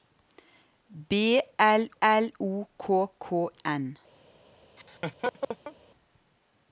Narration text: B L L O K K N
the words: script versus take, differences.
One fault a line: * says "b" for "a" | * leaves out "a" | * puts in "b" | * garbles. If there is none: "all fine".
all fine